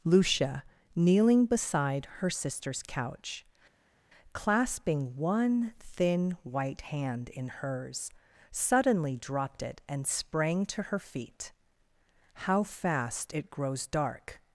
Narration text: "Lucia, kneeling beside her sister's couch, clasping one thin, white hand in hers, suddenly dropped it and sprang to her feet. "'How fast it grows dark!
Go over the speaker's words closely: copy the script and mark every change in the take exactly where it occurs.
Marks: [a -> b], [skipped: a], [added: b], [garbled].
"Lucia, kneeling beside her sister's couch, clasping one thin, white hand in hers, suddenly dropped it and sprang to her feet. "'How fast it grows dark!